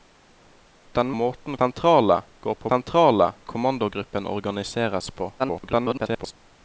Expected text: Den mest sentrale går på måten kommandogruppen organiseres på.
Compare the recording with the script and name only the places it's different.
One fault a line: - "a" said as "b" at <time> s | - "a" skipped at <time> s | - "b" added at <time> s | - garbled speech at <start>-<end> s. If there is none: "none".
- "mest" said as "måten" at 1.1 s
- "måten" said as "sentrale" at 2.7 s
- garbled speech at 5.4-6.3 s